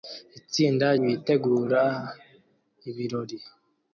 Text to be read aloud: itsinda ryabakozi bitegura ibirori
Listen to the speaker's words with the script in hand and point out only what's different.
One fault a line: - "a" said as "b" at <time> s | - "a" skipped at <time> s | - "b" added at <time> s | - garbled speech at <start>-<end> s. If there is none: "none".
- "ryabakozi" skipped at 0.8 s